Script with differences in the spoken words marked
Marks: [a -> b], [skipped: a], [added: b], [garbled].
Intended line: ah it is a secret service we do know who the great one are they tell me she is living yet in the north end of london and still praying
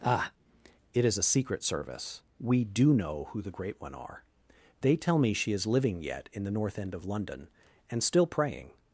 ah it is a secret service we do know who the great one are they tell me she is living yet in the north end of london and still praying